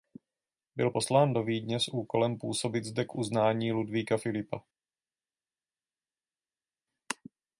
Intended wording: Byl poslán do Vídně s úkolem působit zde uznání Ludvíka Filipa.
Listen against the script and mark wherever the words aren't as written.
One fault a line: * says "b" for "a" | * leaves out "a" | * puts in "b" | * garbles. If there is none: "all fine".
* puts in "k"